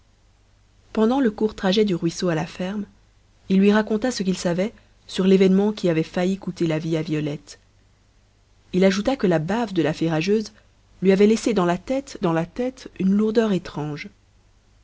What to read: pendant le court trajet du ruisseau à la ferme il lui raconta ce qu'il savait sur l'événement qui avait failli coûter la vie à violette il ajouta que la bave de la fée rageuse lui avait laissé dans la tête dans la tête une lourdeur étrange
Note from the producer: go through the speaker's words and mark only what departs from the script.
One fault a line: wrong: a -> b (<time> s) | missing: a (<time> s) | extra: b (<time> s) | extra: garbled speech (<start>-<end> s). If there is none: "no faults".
no faults